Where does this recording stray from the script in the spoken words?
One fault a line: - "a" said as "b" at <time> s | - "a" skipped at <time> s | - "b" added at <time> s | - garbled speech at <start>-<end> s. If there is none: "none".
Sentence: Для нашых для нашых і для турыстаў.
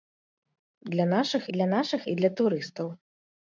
none